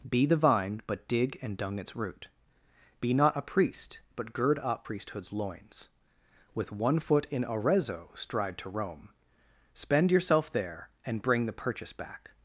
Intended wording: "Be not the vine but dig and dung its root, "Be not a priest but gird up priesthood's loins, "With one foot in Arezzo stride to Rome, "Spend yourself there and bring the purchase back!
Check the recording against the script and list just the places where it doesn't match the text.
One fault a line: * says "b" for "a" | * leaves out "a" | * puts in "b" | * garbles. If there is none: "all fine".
* leaves out "not"